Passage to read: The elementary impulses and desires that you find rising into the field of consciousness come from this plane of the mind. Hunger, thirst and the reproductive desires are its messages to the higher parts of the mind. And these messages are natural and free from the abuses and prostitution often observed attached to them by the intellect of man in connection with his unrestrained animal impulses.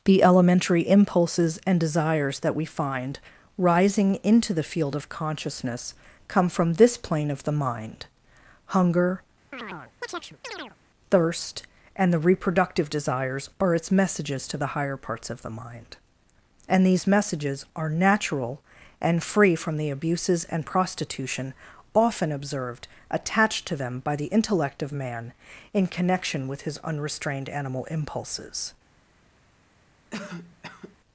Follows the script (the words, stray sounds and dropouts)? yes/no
no